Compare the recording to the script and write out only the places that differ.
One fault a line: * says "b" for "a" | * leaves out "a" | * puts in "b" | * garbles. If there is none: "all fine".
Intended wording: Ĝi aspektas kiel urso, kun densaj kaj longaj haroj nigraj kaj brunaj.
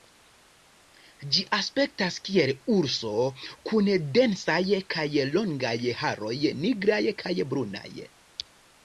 all fine